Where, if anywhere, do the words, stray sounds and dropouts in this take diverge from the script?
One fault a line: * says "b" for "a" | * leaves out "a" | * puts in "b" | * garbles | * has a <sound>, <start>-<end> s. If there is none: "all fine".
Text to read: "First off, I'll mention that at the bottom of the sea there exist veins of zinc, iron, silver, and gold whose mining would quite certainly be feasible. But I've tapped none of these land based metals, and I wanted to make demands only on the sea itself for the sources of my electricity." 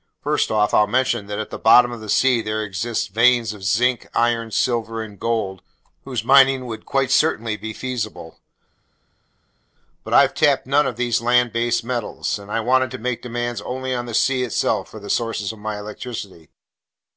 all fine